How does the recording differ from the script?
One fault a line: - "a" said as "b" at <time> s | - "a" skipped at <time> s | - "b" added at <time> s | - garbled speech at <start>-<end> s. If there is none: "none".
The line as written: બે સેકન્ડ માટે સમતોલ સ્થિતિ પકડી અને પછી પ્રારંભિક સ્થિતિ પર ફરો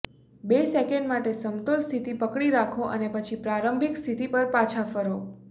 - "રાખો" added at 2.6 s
- "પાછા" added at 4.6 s